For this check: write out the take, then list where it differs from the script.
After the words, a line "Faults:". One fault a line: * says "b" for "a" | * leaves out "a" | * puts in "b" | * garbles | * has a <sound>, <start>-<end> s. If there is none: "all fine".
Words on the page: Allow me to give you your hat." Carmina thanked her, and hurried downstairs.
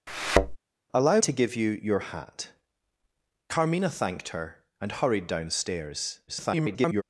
Allow to give you your hat." Carmina thanked her, and hurried downstairs. [garbled]
Faults:
* has a thud, 0.1-0.6 s
* leaves out "me"
* garbles